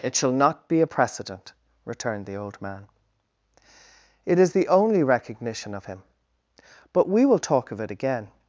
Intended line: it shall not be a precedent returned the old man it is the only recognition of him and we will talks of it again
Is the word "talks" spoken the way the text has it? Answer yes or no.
no